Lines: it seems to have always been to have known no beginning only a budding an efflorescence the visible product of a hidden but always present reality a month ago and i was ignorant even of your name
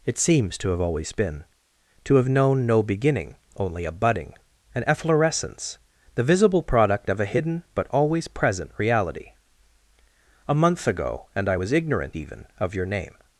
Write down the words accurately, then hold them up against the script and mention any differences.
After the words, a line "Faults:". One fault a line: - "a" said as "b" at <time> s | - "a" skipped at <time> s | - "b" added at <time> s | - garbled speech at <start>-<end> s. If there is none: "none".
it seems to have always been to have known no beginning only a budding an efflorescence the visible product of a hidden but always present reality a month ago and i was ignorant even of your name
Faults:
none